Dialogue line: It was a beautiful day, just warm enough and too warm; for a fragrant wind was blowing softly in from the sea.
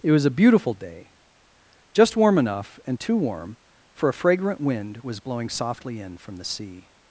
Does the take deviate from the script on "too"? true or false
false